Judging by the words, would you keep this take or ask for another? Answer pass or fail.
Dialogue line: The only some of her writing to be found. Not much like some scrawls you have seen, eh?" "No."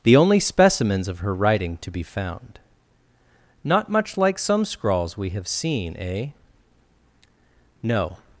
fail